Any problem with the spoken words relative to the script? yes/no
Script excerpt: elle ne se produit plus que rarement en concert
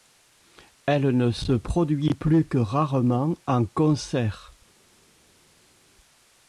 no